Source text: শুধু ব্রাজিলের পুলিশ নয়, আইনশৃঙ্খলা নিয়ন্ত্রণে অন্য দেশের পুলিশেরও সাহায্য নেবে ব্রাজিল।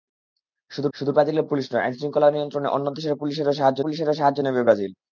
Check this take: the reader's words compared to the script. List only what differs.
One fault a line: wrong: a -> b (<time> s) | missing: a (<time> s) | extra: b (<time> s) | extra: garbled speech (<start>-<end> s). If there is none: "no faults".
extra: শুধু (0.9 s)
extra: পুলিশেরও সাহায্য (3.8 s)